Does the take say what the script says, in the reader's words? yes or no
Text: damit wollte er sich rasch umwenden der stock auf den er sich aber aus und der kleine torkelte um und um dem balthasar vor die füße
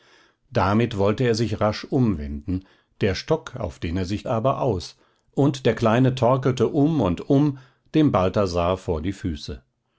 yes